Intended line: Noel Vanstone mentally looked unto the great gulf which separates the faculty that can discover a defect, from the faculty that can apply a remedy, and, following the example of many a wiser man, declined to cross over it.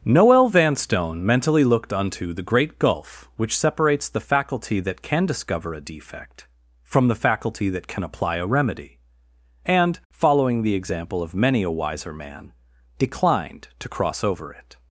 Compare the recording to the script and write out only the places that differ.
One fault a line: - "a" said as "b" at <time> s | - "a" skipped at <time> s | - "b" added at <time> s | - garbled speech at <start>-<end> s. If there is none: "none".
none